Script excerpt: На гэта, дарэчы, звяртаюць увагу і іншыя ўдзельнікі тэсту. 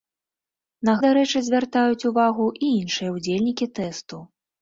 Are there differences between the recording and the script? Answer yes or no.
yes